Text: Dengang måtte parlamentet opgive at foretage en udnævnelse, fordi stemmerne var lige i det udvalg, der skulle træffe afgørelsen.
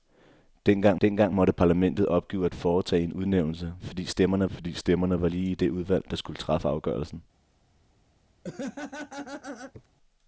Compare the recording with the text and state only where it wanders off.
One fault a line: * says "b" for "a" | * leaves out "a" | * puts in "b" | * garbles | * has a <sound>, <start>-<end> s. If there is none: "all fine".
* puts in "dengang"
* puts in "fordi stemmerne"
* has a laugh, 8.4-9.9 s